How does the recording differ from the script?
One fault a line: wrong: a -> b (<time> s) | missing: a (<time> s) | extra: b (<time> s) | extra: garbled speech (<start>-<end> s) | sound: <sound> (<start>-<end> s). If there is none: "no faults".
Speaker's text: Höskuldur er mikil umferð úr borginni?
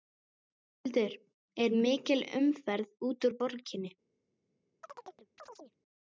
extra: út (3.1 s)
sound: chirp (4.8-5.8 s)